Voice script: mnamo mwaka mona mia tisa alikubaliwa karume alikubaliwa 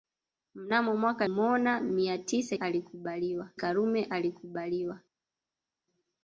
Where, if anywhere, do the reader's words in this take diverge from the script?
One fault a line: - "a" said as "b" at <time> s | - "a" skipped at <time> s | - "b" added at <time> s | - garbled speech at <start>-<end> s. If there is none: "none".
none